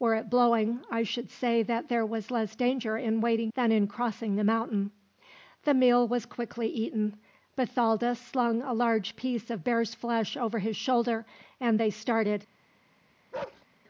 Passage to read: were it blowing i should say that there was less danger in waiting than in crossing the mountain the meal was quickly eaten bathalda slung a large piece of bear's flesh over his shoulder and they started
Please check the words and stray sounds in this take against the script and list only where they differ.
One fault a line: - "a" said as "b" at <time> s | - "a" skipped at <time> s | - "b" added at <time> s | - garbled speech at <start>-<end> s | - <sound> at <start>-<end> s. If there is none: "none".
- bark at 13.3-13.7 s